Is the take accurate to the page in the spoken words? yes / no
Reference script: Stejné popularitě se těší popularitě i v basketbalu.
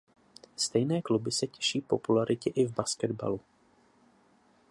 no